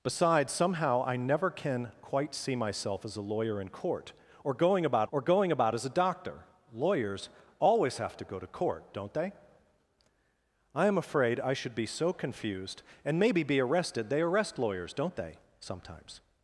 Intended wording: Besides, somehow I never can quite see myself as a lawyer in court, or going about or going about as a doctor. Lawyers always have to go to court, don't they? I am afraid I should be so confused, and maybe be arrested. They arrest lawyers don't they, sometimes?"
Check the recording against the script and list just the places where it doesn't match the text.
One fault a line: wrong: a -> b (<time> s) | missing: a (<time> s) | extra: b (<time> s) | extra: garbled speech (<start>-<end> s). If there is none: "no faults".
no faults